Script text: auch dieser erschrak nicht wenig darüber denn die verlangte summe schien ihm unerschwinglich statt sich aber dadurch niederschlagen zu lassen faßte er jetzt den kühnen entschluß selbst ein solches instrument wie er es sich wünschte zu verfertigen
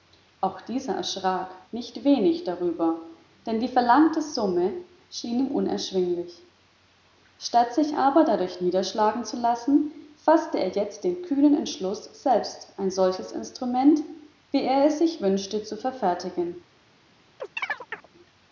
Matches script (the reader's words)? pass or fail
pass